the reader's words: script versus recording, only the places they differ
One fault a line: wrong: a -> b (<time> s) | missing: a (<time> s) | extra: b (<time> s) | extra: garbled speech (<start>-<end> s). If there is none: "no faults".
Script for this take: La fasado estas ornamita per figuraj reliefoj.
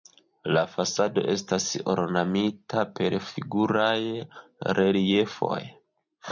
no faults